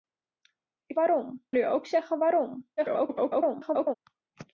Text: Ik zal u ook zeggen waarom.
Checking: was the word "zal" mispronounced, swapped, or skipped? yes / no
yes